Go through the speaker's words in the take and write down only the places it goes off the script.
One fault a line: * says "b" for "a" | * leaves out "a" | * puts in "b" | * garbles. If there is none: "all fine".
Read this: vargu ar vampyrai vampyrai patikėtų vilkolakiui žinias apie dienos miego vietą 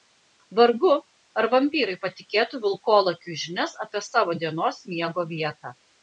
* leaves out "vampyrai"
* puts in "savo"